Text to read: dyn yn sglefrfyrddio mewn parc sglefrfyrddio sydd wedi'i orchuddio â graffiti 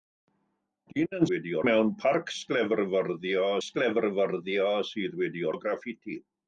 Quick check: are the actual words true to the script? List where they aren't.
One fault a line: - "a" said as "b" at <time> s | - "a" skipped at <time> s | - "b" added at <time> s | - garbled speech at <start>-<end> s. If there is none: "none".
- "sglefrfyrddio" said as "wedi'i" at 1.3 s
- "sglefrfyrddio" added at 3.6 s
- "orchuddio" skipped at 5.5 s